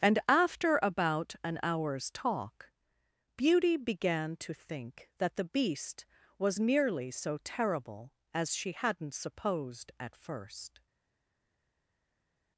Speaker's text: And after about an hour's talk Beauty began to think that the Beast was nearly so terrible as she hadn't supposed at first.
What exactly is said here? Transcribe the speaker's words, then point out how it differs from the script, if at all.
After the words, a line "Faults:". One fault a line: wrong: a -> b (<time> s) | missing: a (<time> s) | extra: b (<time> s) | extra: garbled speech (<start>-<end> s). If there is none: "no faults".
And after about an hour's talk Beauty began to think that the Beast was nearly so terrible as she hadn't supposed at first.
Faults:
no faults